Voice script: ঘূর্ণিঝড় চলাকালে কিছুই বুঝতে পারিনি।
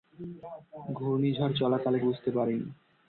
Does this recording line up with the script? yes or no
no